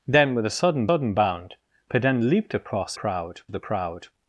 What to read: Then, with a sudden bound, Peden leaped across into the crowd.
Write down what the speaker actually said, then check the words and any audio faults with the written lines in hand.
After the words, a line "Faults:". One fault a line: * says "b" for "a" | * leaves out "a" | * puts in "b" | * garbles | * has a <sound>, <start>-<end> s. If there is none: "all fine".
Then, with a sudden sudden bound, Peden leaped across crowd the crowd.
Faults:
* puts in "sudden"
* says "crowd" for "into"